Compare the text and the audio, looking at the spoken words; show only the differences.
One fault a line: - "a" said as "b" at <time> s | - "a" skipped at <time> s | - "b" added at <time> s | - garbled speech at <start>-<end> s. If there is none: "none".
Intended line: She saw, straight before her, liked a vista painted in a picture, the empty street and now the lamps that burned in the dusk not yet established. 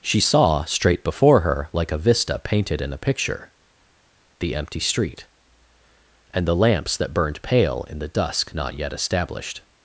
- "liked" said as "like" at 1.7 s
- "now" skipped at 6.5 s
- "pale" added at 7.4 s